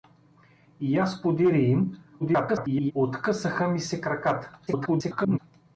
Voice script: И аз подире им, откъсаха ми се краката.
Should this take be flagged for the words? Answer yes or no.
yes